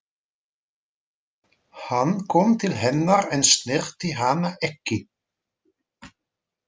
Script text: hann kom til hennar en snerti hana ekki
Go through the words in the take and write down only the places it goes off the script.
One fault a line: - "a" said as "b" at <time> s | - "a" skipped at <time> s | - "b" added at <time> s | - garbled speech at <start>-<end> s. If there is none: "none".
none